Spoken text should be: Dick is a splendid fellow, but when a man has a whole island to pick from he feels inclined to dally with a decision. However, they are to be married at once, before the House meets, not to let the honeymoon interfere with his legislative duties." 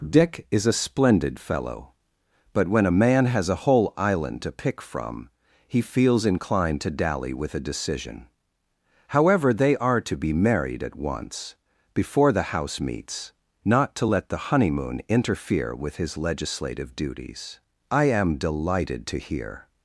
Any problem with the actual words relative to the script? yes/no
yes